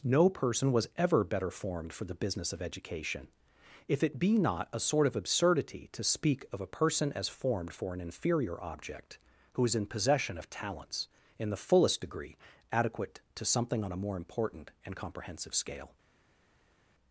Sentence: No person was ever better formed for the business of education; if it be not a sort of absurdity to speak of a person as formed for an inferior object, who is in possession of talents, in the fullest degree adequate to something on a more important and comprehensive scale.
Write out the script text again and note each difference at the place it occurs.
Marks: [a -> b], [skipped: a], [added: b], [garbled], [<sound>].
No person was ever better formed for the business of education; if it be not a sort of absurdity to speak of a person as formed for an inferior object, who is in possession of talents, in the fullest degree adequate to something on a more important and comprehensive scale.